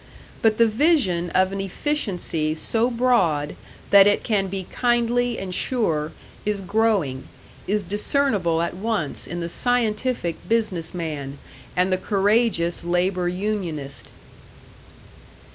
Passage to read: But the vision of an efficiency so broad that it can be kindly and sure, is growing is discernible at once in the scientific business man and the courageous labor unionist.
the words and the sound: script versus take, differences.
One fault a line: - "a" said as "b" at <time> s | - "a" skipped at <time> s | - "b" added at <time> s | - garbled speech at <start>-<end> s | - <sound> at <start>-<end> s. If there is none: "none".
none